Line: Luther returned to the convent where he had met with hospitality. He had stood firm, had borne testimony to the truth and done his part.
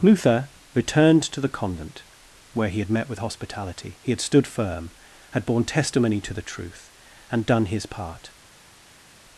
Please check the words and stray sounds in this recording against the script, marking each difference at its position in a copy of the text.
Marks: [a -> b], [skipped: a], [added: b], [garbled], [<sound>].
Luther returned to the convent where he had met with hospitality. He had stood firm, had borne testimony to the truth and done his part.